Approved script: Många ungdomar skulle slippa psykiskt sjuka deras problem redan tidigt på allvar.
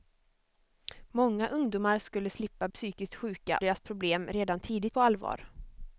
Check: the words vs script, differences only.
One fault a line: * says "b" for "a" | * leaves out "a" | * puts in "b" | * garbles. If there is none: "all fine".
all fine